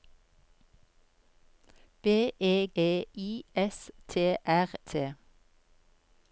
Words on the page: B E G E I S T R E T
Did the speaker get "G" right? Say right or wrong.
wrong